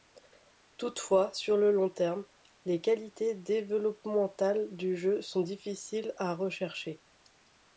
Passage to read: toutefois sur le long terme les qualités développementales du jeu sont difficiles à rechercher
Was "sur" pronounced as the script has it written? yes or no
yes